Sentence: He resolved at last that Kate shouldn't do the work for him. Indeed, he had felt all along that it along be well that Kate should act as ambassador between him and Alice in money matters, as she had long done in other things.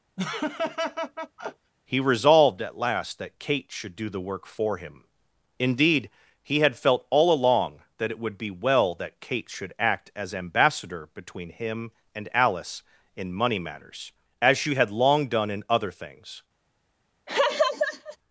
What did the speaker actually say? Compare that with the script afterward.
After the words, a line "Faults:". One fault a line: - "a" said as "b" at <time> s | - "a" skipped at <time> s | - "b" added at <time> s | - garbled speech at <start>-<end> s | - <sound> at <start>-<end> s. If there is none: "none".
He resolved at last that Kate should do the work for him. Indeed, he had felt all along that it would be well that Kate should act as ambassador between him and Alice in money matters, as she had long done in other things.
Faults:
- laugh at 0.2-1.7 s
- "shouldn't" said as "should" at 3.7 s
- "along" said as "would" at 8.2 s
- laugh at 17.3-18.2 s